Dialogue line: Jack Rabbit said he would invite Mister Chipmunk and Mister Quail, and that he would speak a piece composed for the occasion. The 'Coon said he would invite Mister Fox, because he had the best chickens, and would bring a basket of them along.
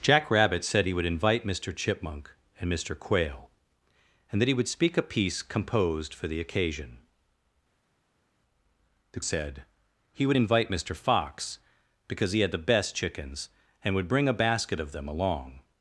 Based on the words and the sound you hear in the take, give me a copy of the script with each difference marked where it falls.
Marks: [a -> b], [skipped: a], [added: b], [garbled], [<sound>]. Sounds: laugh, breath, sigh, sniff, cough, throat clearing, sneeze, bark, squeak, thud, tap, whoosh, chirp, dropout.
Jack Rabbit said he would invite Mister Chipmunk and Mister Quail, and that he would speak a piece composed for the occasion. The [skipped: 'Coon] said he would invite Mister Fox, because he had the best chickens, and would bring a basket of them along.